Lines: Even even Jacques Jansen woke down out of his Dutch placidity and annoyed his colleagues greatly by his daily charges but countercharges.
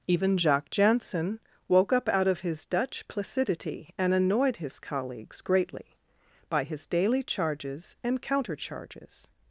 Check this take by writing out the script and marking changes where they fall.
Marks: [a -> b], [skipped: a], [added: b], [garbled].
Even [skipped: even] Jacques Jansen woke [down -> up] out of his Dutch placidity and annoyed his colleagues greatly by his daily charges [but -> and] countercharges.